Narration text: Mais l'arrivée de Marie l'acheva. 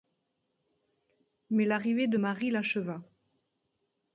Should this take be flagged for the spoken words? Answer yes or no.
no